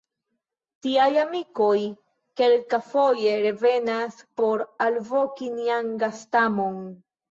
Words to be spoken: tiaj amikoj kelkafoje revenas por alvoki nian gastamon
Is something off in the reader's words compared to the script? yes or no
no